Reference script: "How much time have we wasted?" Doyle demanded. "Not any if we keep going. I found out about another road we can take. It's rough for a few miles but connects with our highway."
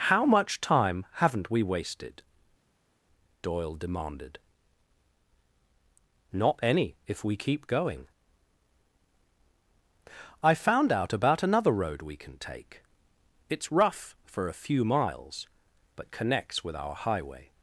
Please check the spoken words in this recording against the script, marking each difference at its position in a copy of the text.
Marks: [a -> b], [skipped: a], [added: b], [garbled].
"How much time [have -> haven't] we wasted?" Doyle demanded. "Not any if we keep going. I found out about another road we can take. It's rough for a few miles but connects with our highway."